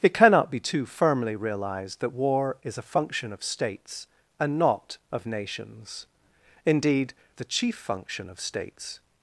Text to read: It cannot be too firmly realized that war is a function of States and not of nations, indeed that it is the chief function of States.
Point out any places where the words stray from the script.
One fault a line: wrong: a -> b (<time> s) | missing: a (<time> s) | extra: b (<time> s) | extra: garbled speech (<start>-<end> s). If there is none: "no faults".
missing: that it is (7.1 s)